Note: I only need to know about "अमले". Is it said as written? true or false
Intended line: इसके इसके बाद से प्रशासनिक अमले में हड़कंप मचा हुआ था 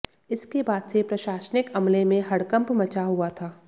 true